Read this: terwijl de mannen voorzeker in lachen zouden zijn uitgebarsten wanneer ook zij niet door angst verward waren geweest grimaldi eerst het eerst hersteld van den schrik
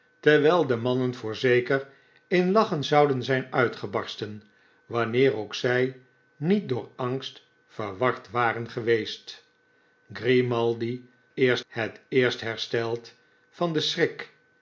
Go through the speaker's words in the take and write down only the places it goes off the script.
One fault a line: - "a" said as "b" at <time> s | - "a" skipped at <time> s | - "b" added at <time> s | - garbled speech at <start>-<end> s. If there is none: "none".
none